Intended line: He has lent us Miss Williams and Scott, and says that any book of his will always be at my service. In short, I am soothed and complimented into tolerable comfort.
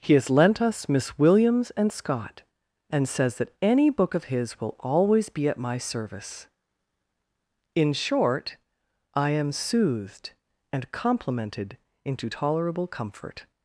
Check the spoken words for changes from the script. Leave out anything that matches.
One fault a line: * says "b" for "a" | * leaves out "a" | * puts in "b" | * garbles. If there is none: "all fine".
all fine